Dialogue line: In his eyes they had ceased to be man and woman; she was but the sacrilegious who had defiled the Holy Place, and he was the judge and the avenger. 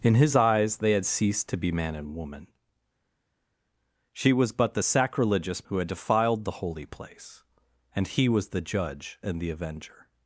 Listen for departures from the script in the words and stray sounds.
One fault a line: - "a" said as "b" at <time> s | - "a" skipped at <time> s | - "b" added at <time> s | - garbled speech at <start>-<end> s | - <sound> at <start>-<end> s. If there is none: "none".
none